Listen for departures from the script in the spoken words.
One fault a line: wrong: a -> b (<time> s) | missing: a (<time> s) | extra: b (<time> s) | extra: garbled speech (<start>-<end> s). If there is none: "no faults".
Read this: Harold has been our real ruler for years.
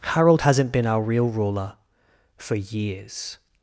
wrong: has -> hasn't (0.4 s)